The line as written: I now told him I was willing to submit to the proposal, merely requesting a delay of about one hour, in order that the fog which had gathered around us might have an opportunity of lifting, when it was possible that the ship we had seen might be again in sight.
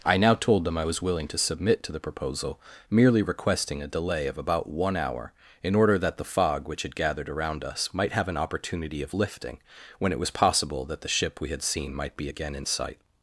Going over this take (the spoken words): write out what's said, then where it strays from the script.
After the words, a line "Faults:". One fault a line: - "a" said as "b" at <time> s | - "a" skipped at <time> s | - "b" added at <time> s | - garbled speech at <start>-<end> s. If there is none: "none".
I now told them I was willing to submit to the proposal, merely requesting a delay of about one hour, in order that the fog which had gathered around us might have an opportunity of lifting, when it was possible that the ship we had seen might be again in sight.
Faults:
- "him" said as "them" at 0.7 s